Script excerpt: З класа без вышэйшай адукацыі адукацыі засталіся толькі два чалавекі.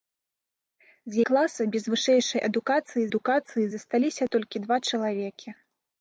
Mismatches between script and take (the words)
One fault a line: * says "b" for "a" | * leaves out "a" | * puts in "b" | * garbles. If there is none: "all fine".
all fine